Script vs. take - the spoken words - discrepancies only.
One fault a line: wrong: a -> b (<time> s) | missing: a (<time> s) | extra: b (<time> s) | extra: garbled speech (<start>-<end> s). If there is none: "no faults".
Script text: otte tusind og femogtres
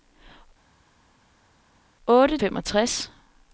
missing: tusind og (2.4 s)